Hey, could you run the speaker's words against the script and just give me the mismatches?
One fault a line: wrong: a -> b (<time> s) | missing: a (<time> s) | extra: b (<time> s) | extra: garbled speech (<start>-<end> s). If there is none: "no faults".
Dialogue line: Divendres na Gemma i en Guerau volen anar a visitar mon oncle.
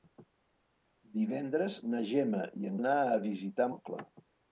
missing: Guerau volen (2.8 s)
missing: mon (3.7 s)